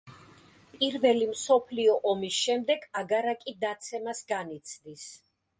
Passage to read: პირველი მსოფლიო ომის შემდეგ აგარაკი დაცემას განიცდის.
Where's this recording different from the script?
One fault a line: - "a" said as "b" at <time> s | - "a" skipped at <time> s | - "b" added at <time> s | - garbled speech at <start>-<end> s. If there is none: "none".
none